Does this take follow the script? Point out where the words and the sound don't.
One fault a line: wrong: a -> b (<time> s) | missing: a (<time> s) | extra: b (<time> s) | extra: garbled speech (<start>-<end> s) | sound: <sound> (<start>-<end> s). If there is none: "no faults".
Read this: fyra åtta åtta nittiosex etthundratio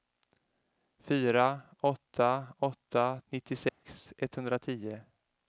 sound: dropout (3.7-3.8 s)